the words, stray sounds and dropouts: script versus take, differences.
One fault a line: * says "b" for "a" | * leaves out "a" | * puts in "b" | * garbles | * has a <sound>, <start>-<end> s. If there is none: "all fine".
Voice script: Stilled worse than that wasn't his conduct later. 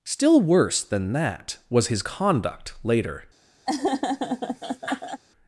* says "Still" for "Stilled"
* says "was" for "wasn't"
* has a laugh, 3.7-5.2 s